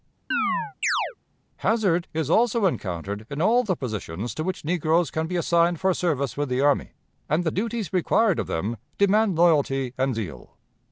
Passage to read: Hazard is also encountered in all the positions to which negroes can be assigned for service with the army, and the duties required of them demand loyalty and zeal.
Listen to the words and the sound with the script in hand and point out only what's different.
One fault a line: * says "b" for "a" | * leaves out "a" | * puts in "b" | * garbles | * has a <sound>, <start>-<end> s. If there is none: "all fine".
* has a chirp, 0.3-1.2 s